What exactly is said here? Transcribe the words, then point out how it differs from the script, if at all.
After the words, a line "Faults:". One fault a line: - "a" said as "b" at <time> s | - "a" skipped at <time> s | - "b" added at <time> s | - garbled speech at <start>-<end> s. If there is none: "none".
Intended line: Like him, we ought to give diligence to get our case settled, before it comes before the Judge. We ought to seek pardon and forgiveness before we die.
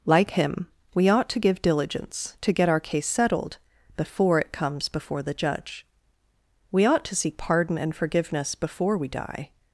Like him, we ought to give diligence to get our case settled, before it comes before the Judge. We ought to seek pardon and forgiveness before we die.
Faults:
none